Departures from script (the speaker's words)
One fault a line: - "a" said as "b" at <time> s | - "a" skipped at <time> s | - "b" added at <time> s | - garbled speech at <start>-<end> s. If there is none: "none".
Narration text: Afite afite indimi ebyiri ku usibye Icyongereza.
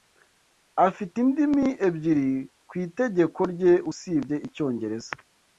- "afite" skipped at 1.1 s
- "itegeko rye" added at 2.8 s